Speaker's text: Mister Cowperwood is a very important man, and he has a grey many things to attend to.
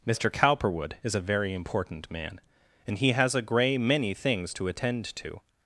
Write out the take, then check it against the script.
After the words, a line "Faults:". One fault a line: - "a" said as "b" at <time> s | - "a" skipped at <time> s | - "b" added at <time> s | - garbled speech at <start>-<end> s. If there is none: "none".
Mister Cowperwood is a very important man, and he has a grey many things to attend to.
Faults:
none